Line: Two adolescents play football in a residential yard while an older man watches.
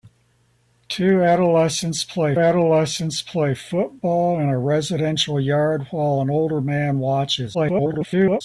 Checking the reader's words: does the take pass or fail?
fail